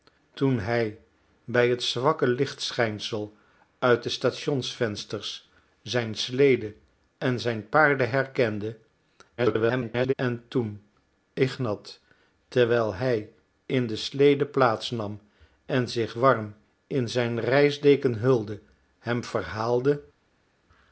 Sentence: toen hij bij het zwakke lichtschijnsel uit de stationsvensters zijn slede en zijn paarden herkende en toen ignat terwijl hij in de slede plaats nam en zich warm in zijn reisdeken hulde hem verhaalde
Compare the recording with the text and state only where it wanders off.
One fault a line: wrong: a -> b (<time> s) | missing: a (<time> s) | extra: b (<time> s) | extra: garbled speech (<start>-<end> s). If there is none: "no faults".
extra: garbled speech (9.4-10.1 s)